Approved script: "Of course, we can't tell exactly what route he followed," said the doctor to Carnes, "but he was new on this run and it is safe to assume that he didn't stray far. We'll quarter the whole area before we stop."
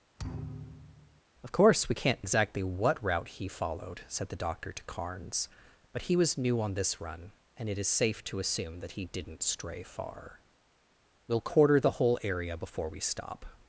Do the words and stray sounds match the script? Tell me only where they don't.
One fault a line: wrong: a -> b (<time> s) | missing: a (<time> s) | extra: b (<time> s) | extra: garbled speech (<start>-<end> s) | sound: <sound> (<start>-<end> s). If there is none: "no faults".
sound: thud (0.2-1.2 s)
missing: tell (2.2 s)